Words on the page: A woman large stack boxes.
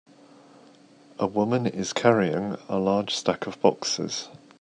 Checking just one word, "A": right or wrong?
right